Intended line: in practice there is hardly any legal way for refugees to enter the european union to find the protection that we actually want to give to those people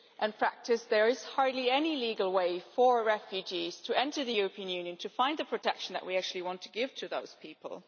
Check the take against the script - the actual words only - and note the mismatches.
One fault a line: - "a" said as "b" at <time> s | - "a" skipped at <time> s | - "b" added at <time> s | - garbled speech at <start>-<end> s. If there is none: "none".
none